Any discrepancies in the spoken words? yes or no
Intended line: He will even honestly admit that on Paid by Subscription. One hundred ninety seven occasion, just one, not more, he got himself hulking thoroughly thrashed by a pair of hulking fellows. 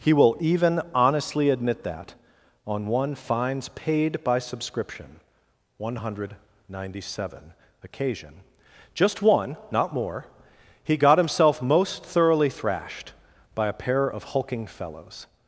yes